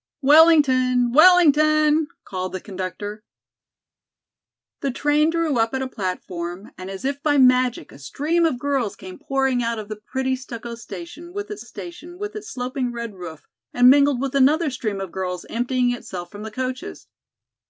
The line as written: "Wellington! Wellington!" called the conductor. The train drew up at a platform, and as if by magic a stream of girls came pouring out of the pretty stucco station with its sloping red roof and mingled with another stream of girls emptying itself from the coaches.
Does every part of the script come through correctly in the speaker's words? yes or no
no